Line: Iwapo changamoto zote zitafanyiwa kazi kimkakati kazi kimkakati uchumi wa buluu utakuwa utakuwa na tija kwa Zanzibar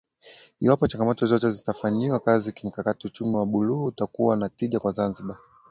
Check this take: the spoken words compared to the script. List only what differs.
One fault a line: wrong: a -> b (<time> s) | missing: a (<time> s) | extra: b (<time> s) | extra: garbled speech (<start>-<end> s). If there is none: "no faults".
missing: kazi kimkakati (3.1 s)
missing: utakuwa (4.4 s)